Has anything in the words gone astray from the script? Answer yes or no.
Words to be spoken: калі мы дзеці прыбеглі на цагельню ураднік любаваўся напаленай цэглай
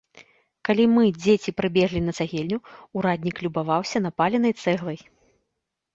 no